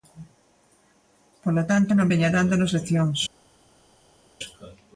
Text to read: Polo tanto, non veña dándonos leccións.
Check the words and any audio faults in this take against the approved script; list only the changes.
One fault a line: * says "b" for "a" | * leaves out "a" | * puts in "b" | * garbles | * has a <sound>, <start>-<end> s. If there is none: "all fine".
all fine